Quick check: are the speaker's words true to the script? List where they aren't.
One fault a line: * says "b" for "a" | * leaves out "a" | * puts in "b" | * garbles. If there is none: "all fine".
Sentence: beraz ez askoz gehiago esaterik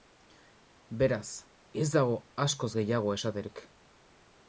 * puts in "dago"